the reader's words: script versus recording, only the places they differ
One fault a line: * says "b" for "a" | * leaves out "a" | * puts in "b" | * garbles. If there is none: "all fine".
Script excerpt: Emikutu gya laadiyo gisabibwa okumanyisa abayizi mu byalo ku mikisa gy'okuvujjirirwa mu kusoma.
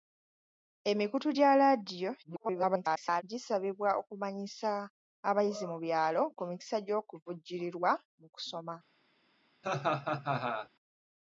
* garbles